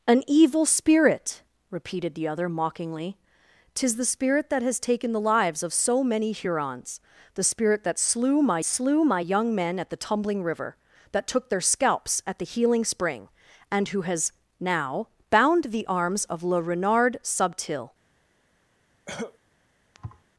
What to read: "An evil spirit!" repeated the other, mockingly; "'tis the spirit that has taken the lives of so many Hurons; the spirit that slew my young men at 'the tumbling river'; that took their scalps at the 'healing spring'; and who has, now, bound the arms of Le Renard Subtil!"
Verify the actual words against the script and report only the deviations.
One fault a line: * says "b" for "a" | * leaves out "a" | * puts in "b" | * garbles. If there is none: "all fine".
* puts in "slew my"